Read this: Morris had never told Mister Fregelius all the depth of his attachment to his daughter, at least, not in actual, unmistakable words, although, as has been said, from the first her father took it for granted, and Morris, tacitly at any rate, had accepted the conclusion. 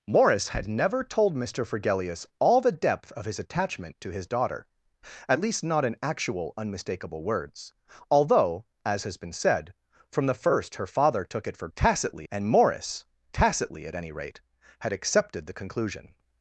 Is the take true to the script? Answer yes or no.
no